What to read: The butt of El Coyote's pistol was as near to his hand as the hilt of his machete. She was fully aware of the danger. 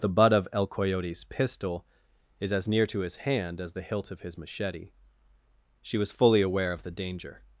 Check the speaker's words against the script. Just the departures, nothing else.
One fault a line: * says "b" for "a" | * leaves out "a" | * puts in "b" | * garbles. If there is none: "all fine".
* says "is" for "was"